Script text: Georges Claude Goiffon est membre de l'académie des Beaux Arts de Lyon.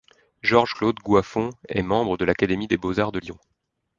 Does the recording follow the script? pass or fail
pass